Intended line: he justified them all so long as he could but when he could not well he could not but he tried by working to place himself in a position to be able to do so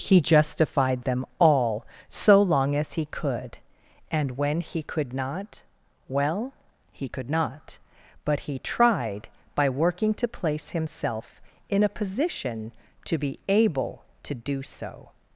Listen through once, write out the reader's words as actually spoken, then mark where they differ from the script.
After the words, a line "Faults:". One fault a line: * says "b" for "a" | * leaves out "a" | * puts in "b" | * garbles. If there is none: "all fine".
he justified them all so long as he could and when he could not well he could not but he tried by working to place himself in a position to be able to do so
Faults:
* says "and" for "but"